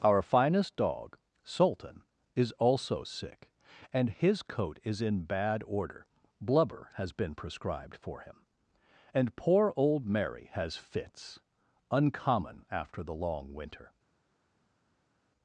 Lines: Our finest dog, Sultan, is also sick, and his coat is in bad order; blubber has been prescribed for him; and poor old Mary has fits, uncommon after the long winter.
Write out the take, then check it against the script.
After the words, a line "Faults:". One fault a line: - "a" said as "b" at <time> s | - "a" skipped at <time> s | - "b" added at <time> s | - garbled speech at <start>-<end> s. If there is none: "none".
Our finest dog, Sultan, is also sick, and his coat is in bad order; blubber has been prescribed for him; and poor old Mary has fits, uncommon after the long winter.
Faults:
none